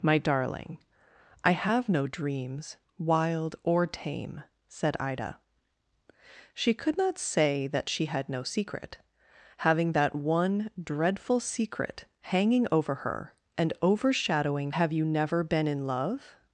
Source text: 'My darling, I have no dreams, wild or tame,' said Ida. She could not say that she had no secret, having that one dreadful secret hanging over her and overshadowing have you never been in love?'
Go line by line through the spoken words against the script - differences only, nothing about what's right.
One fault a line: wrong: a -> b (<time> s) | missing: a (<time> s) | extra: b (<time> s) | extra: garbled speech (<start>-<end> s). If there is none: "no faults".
no faults